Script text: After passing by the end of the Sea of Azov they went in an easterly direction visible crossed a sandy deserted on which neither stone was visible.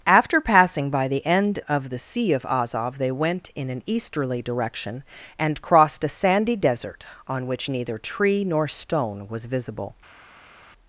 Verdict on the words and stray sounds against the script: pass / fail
fail